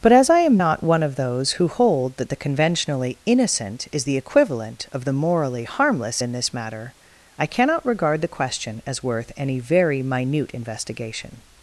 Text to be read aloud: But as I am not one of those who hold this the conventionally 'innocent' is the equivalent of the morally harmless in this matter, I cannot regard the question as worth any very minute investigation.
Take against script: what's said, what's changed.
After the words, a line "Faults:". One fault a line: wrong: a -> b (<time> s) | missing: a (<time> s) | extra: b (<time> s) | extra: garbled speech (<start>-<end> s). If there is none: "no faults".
But as I am not one of those who hold that the conventionally 'innocent' is the equivalent of the morally harmless in this matter, I cannot regard the question as worth any very minute investigation.
Faults:
wrong: this -> that (2.2 s)